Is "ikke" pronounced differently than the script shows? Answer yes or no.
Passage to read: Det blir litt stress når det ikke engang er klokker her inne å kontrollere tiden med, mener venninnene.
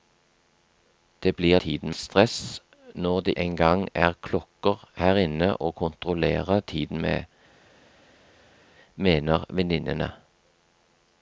yes